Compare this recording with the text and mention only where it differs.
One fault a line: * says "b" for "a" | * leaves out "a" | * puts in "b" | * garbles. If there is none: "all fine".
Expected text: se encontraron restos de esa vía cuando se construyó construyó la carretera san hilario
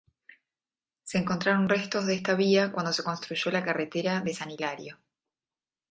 * says "esta" for "esa"
* leaves out "construyó"
* puts in "de"